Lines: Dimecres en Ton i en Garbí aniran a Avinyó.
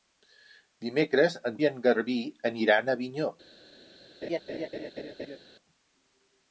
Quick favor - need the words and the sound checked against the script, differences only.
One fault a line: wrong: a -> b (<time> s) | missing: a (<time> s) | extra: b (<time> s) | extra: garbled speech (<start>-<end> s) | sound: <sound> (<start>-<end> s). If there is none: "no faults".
missing: Ton (1.6 s)
sound: laugh (4.2-5.4 s)